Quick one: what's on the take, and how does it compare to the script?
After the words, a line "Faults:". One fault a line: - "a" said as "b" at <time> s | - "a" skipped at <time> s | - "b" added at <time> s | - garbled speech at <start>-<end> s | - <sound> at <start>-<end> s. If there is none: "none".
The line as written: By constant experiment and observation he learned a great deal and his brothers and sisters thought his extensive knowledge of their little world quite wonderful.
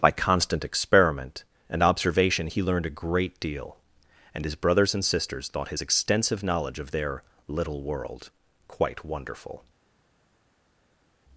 By constant experiment and observation he learned a great deal and his brothers and sisters thought his extensive knowledge of their little world quite wonderful.
Faults:
none